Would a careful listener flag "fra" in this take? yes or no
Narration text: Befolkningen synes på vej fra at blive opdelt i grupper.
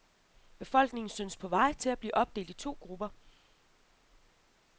yes